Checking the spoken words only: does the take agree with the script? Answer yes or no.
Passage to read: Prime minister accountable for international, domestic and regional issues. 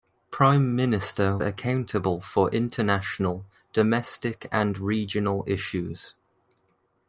yes